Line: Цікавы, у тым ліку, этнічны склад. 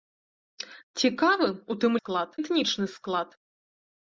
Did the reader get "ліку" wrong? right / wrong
wrong